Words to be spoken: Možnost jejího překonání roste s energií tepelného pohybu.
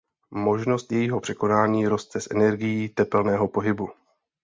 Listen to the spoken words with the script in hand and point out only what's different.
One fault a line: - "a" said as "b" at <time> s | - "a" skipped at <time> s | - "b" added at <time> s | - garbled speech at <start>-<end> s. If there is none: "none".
none